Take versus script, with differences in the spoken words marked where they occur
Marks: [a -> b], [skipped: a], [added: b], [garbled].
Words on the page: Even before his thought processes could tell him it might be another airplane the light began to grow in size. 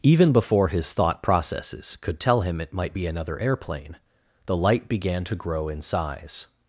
Even before his thought processes could tell him it might be another airplane the light began to grow in size.